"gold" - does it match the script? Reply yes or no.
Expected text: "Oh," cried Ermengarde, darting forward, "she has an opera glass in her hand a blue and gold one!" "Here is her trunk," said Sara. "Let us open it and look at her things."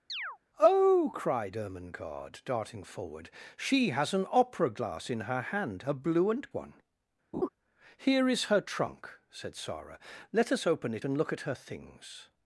no